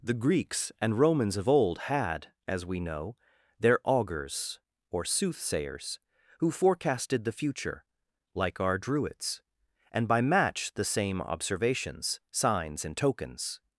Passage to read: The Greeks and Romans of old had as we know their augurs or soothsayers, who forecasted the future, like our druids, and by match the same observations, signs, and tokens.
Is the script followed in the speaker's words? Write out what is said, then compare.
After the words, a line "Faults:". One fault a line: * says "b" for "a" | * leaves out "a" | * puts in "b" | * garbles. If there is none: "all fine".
The Greeks and Romans of old had as we know their augurs or soothsayers, who forecasted the future, like our druids, and by match the same observations, signs, and tokens.
Faults:
all fine